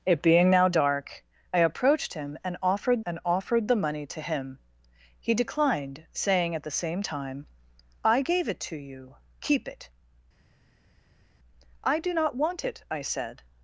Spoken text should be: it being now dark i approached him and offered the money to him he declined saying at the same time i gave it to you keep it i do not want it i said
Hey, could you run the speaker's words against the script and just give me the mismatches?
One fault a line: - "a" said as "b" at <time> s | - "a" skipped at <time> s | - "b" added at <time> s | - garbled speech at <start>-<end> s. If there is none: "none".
- "and offered" added at 3.0 s